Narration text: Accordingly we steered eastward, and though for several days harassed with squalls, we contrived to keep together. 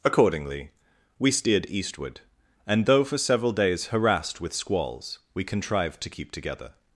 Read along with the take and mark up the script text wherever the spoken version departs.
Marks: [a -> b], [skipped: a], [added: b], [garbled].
Accordingly we steered eastward, and though for several days harassed with squalls, we contrived to keep together.